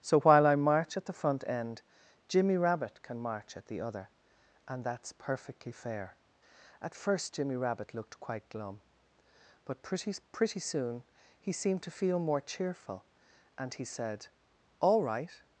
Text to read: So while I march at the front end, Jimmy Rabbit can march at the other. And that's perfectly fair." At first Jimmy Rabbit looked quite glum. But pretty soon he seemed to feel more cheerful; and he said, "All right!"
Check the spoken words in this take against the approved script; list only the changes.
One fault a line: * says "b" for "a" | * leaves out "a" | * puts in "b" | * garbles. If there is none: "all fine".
* puts in "pretty"